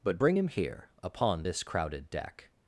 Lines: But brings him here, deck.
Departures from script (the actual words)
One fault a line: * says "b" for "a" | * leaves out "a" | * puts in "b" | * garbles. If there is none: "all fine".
* says "bring" for "brings"
* puts in "upon this crowded"